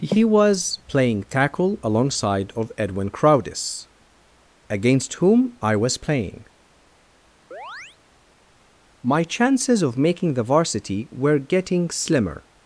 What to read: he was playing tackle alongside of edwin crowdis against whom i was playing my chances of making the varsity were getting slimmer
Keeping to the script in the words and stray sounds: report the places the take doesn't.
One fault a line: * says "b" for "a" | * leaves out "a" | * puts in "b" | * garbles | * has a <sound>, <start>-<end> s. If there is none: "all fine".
* has a chirp, 7.5-8.0 s